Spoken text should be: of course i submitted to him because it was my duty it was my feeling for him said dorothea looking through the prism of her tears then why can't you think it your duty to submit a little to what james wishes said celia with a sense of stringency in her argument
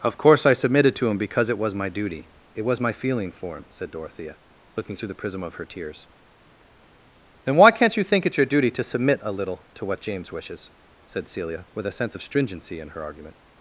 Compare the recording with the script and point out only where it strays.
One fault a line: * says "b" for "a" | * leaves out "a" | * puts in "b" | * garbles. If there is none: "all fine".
all fine